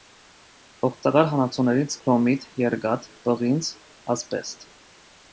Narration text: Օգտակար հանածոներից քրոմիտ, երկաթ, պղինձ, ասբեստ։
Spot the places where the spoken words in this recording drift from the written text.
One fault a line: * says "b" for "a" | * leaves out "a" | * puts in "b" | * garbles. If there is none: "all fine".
all fine